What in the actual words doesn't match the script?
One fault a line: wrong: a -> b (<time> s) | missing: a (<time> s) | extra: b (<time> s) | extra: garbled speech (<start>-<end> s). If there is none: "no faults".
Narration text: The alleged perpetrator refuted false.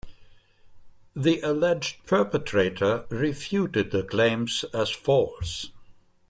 extra: the claims as (3.9 s)